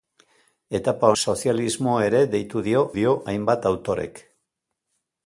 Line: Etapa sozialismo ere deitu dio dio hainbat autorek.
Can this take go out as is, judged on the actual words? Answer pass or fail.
pass